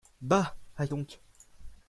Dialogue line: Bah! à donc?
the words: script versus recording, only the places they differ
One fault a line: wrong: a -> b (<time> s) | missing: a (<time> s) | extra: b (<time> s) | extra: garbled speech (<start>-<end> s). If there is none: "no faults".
no faults